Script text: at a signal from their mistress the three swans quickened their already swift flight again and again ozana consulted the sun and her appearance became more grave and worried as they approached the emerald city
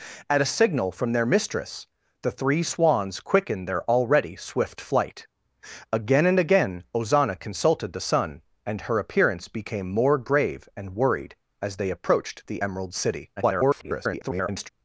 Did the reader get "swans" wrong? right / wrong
right